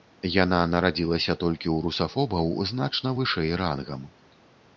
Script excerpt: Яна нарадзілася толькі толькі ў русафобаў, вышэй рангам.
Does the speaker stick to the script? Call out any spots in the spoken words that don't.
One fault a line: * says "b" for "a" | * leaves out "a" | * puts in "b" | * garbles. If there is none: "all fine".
* leaves out "толькі"
* puts in "значна"